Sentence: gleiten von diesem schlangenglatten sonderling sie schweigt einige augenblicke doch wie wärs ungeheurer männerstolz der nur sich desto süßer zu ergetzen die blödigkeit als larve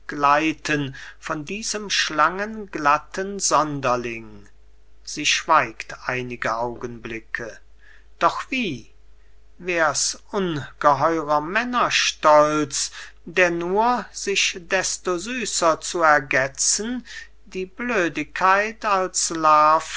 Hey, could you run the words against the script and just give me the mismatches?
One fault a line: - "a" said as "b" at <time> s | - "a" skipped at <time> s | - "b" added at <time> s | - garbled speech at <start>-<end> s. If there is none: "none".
none